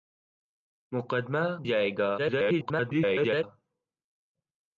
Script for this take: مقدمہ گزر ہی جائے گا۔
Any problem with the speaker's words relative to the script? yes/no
yes